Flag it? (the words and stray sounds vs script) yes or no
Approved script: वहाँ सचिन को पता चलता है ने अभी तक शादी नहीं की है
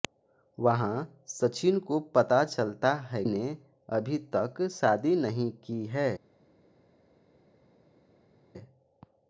no